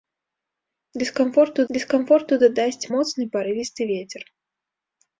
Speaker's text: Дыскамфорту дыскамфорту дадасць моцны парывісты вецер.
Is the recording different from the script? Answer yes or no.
no